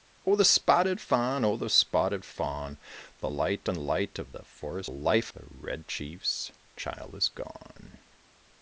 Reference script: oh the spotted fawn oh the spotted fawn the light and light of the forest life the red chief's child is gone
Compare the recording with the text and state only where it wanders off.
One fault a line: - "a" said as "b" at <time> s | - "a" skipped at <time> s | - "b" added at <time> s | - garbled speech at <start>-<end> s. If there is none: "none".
none